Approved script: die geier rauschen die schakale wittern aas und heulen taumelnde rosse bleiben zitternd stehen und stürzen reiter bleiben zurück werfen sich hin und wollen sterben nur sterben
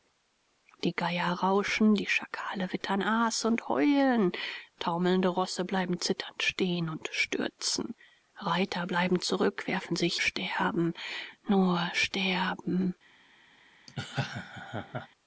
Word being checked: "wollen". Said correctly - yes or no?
no